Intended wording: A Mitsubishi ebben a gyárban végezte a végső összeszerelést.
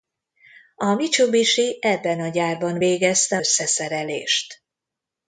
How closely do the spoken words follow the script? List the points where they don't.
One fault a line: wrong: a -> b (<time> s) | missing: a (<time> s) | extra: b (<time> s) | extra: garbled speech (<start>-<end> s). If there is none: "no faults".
missing: a végső (3.4 s)